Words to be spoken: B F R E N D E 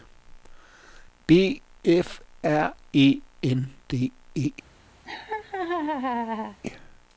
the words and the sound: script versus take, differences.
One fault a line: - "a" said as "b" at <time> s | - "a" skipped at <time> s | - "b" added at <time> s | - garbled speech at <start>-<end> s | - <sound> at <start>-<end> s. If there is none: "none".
- laugh at 5.0-6.6 s